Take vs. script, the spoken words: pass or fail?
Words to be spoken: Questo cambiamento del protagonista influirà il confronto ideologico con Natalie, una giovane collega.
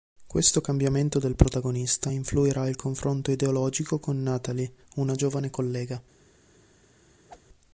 pass